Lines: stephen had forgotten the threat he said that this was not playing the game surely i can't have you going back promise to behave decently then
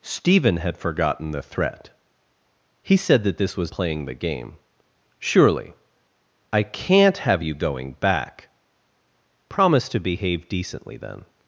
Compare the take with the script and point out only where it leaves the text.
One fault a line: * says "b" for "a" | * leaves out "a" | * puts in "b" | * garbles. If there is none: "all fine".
* leaves out "not"